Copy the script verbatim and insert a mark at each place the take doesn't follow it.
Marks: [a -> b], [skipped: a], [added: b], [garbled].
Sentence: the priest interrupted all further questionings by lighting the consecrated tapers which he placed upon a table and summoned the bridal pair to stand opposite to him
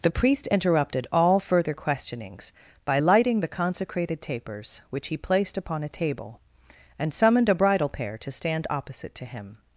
the priest interrupted all further questionings by lighting the consecrated tapers which he placed upon a table and summoned [the -> a] bridal pair to stand opposite to him